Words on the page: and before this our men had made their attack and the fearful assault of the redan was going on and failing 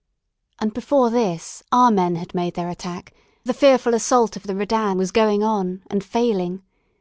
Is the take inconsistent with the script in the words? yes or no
yes